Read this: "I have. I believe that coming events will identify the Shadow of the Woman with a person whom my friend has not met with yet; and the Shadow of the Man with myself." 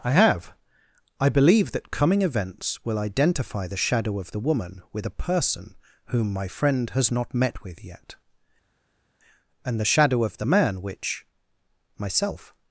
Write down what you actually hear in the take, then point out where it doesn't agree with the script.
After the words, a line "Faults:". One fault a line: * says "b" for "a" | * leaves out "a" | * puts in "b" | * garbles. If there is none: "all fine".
"I have. I believe that coming events will identify the Shadow of the Woman with a person whom my friend has not met with yet; and the Shadow of the Man which myself."
Faults:
* says "which" for "with"